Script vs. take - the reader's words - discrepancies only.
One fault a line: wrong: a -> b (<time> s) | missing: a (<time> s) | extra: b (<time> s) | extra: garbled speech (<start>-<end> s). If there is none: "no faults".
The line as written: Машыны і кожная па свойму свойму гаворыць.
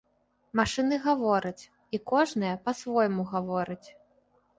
extra: гавораць (1.0 s)
missing: свойму (3.3 s)